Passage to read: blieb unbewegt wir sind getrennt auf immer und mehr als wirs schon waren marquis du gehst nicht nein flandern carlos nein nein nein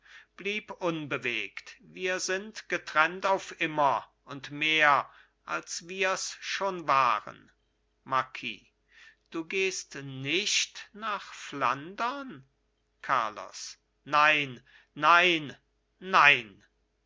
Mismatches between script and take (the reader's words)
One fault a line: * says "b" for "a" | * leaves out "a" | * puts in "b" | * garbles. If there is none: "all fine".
* says "nach" for "nein"